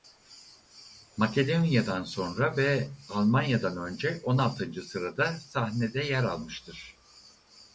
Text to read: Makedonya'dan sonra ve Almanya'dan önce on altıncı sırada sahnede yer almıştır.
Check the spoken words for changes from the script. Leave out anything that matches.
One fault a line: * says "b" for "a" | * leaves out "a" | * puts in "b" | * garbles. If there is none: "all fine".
all fine